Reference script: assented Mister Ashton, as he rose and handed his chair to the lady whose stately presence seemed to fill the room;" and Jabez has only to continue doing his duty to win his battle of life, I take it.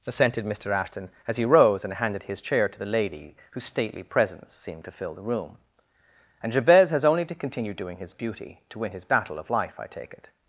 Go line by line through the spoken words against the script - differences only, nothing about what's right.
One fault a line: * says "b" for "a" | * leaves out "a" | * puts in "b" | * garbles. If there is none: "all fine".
all fine